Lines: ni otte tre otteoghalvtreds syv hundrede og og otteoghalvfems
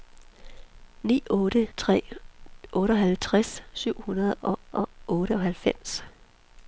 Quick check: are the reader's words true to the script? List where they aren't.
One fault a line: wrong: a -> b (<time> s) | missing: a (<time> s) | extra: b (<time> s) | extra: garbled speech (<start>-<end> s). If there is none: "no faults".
no faults